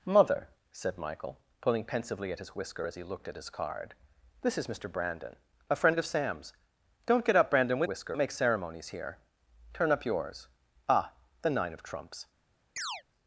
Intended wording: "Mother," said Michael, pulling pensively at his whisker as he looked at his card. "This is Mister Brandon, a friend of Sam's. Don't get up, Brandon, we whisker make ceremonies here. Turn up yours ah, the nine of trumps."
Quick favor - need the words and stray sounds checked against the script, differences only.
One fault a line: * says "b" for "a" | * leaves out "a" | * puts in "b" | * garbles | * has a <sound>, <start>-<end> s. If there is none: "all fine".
* has a chirp, 12.8-13.0 s